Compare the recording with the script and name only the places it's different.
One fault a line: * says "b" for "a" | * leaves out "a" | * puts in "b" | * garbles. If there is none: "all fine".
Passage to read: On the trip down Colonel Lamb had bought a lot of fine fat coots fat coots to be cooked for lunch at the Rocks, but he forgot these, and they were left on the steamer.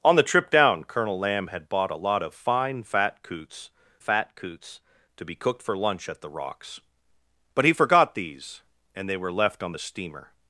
all fine